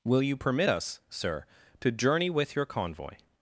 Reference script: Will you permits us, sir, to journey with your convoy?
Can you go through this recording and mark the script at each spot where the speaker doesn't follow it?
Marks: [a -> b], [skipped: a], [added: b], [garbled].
Will you [permits -> permit] us, sir, to journey with your convoy?